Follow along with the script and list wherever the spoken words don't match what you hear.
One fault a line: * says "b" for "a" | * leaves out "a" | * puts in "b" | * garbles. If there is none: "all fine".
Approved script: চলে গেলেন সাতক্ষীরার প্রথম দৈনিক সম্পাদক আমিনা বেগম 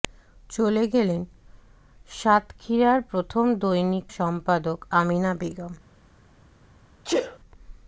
all fine